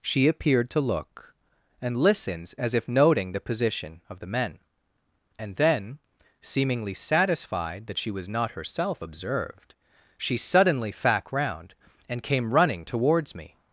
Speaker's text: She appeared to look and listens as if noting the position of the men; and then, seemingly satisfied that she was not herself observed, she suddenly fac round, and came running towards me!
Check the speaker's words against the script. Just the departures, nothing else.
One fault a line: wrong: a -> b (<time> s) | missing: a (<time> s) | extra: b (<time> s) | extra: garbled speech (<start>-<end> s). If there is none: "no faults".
no faults